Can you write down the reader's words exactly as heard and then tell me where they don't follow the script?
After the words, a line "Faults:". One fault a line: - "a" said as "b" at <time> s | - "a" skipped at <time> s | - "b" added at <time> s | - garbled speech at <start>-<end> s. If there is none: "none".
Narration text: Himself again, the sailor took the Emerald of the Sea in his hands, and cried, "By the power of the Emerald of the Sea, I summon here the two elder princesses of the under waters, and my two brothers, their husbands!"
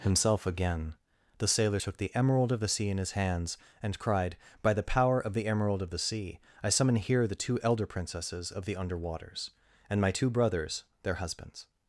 Himself again, the sailor took the Emerald of the Sea in his hands, and cried, "By the power of the Emerald of the Sea, I summon here the two elder princesses of the under waters, and my two brothers, their husbands!"
Faults:
none